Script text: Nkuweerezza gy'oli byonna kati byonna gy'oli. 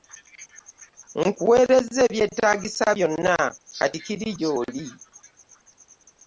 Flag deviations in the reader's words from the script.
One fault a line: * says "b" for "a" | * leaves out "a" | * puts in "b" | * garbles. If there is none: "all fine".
* says "ebyetaagisa" for "gy'oli"
* says "kiri" for "byonna"